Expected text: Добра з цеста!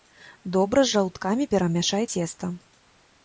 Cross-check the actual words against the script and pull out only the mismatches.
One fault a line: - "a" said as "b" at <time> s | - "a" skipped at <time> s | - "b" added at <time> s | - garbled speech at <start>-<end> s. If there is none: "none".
- "жаўткамі перамяшай" added at 0.9 s